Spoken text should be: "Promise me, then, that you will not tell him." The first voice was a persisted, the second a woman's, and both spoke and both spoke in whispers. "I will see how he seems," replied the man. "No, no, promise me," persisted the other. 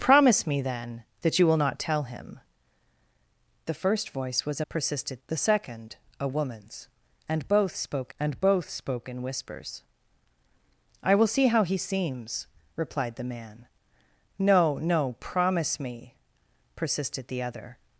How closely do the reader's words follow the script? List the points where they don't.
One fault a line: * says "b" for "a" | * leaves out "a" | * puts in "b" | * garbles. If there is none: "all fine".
all fine